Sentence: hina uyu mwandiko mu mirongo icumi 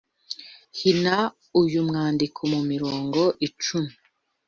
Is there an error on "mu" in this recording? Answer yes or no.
no